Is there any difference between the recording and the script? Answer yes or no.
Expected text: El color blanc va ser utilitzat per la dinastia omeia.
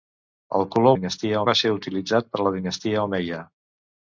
yes